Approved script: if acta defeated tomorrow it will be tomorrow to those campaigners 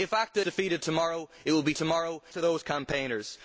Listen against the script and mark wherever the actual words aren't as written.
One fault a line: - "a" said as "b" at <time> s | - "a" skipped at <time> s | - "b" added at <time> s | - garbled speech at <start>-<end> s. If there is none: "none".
none